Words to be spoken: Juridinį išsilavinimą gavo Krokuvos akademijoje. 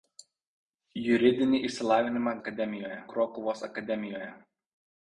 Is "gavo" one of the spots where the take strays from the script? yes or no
yes